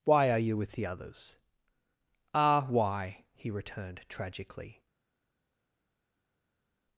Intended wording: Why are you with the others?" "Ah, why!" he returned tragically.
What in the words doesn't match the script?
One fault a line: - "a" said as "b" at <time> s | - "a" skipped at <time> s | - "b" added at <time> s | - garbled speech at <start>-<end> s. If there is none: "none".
none